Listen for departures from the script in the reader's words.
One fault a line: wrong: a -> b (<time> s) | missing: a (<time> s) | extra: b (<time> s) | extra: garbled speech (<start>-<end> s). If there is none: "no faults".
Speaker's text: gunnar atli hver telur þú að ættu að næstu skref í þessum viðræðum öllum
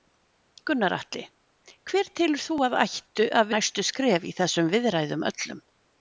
no faults